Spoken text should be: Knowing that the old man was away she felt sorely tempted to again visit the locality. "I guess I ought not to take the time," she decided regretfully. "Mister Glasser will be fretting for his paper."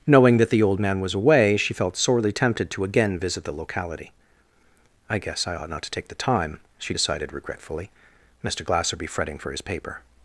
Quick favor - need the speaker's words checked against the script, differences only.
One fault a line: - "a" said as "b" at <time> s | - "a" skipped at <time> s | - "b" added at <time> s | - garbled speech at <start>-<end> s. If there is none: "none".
- "will" skipped at 9.0 s